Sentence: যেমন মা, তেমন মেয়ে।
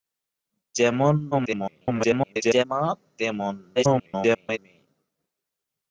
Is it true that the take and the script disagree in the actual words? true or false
true